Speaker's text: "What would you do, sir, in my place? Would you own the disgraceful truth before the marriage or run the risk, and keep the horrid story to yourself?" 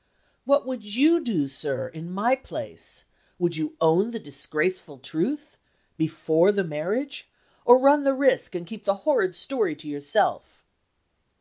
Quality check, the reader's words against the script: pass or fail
pass